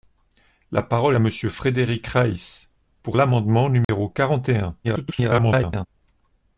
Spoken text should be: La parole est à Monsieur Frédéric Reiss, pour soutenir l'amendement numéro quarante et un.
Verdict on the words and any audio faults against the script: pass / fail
fail